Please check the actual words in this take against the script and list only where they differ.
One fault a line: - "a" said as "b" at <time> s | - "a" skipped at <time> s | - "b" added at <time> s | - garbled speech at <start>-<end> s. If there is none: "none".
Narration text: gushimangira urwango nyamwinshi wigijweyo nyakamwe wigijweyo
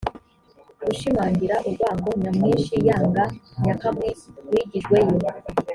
- "wigijweyo" said as "yanga" at 2.9 s